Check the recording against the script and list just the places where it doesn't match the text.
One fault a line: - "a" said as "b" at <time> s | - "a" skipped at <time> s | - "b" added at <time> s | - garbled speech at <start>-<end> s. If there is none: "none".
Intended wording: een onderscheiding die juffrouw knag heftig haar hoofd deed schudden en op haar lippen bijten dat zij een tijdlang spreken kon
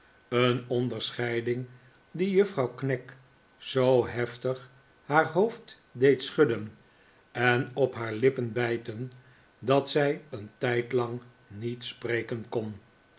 - "zoo" added at 3.6 s
- "niet" added at 11.5 s